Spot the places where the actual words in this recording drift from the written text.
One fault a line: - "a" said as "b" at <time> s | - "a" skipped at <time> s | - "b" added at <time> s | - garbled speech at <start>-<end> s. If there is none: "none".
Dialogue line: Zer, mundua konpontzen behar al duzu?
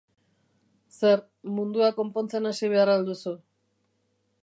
- "hasi" added at 2.5 s